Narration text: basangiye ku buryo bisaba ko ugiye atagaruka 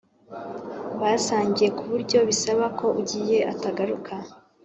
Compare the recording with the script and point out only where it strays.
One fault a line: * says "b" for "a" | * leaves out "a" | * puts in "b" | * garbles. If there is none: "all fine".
all fine